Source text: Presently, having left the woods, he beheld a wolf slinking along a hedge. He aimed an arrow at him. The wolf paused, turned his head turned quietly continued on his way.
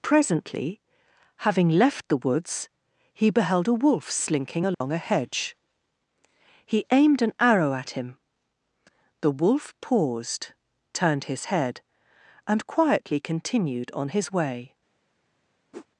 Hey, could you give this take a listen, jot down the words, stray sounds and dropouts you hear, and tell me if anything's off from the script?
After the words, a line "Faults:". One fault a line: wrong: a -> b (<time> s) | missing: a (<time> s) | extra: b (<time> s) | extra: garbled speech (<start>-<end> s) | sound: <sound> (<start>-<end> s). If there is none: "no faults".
Presently, having left the woods, he beheld a wolf slinking along a hedge. He aimed an arrow at him. The wolf paused, turned his head and quietly continued on his way.
Faults:
sound: dropout (4.7-4.8 s)
wrong: turned -> and (12.5 s)
sound: whoosh (15.7-15.9 s)